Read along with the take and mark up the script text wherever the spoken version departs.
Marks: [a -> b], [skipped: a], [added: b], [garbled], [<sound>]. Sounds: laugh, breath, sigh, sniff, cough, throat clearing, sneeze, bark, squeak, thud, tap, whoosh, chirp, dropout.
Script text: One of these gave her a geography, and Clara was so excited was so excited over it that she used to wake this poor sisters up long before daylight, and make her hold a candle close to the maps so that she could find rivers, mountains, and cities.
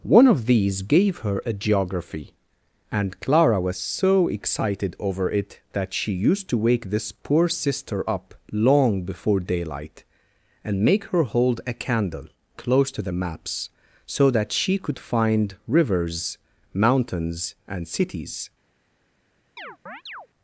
One of these gave her a geography, and Clara was so excited [skipped: was so excited] over it that she used to wake this poor [sisters -> sister] up long before daylight, and make her hold a candle close to the maps so that she could find rivers, mountains, and cities. [chirp]